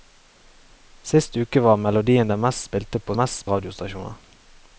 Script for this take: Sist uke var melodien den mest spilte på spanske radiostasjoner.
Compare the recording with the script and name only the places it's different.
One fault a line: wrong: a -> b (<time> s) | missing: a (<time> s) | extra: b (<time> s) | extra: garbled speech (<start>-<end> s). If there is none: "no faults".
wrong: spanske -> mest (3.2 s)